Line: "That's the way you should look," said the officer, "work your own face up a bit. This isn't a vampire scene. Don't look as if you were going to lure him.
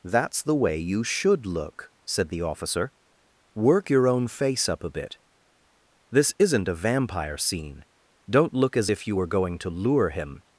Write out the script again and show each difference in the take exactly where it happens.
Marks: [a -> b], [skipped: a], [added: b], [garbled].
"That's the way you should look," said the officer, "work your own face up a bit. This isn't a vampire scene. Don't look as if you were going to lure him.